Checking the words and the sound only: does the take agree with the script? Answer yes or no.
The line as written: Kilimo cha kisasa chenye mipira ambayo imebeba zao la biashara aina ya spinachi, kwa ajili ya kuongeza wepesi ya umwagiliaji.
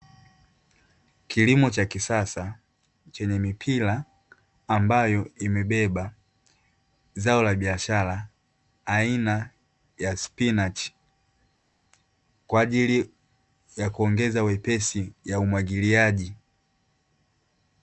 yes